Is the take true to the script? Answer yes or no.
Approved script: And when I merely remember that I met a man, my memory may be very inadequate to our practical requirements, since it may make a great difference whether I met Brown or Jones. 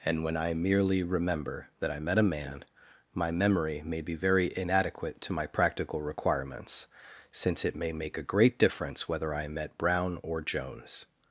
no